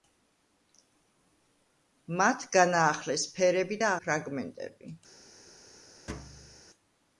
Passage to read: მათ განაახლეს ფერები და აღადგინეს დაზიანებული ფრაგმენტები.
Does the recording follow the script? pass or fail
fail